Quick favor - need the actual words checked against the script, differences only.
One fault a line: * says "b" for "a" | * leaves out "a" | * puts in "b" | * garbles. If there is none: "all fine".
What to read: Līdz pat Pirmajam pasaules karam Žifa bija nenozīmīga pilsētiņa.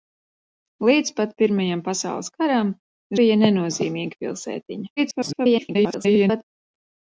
* leaves out "Žifa"
* garbles